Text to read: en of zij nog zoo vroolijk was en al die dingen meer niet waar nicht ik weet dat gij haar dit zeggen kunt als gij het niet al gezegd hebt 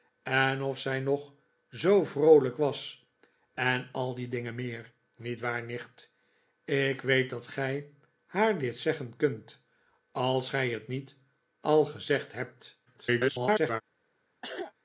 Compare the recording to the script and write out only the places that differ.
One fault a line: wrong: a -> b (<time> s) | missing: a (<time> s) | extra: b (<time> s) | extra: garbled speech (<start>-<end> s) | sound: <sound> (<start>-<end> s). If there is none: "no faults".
extra: garbled speech (12.9-13.8 s)
sound: cough (14.4-14.7 s)